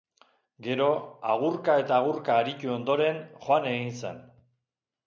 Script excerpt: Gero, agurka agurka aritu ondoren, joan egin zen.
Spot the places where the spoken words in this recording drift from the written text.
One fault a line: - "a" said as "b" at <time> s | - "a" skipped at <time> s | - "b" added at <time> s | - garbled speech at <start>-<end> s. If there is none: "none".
- "eta" added at 1.8 s